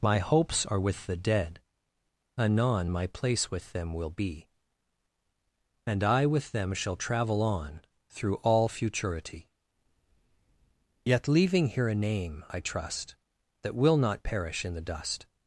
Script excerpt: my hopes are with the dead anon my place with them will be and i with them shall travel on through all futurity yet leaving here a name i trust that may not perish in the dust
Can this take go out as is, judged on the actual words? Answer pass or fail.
fail